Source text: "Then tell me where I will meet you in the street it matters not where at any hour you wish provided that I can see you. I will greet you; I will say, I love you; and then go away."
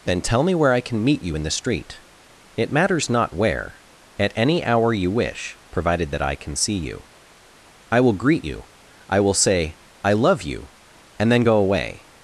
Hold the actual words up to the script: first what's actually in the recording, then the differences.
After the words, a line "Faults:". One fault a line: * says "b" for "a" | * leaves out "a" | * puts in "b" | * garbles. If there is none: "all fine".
"Then tell me where I can meet you in the street it matters not where at any hour you wish provided that I can see you. I will greet you; I will say, I love you; and then go away."
Faults:
* says "can" for "will"